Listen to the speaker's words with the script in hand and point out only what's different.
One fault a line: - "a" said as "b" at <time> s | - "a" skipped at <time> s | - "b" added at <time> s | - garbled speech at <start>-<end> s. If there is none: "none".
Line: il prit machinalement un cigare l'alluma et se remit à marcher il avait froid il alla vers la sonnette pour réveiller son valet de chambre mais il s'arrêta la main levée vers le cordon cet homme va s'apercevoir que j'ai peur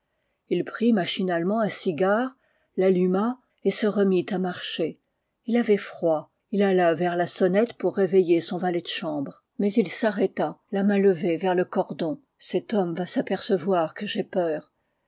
none